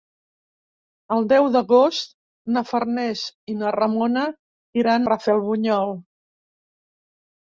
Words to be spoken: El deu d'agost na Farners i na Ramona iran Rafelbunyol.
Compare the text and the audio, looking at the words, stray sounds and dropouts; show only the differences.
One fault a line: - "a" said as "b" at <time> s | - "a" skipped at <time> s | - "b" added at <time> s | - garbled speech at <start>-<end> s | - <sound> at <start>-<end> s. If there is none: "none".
none